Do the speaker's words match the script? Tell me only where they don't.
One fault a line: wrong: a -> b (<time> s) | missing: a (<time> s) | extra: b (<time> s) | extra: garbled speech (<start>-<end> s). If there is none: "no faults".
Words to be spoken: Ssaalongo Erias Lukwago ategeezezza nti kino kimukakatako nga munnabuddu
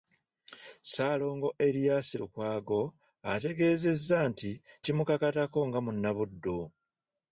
missing: kino (4.5 s)